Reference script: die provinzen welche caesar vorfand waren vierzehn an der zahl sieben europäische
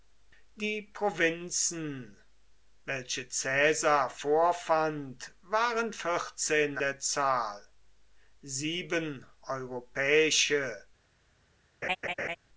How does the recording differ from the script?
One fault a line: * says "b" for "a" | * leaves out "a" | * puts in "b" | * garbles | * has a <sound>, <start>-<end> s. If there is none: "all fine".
* leaves out "an"
* has a laugh, 11.8-12.4 s